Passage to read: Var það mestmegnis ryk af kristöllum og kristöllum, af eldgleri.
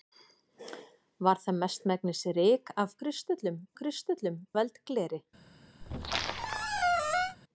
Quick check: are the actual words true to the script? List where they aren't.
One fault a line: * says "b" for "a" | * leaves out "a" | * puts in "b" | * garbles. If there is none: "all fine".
all fine